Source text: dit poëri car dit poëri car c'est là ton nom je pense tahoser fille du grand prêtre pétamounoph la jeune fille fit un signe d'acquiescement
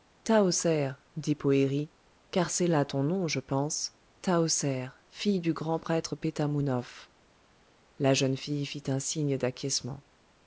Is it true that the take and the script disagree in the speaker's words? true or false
true